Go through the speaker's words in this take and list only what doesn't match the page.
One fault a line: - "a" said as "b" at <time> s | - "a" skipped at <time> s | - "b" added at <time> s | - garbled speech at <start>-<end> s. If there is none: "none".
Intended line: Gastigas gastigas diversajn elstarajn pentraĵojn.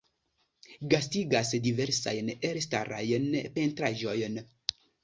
- "gastigas" skipped at 1.5 s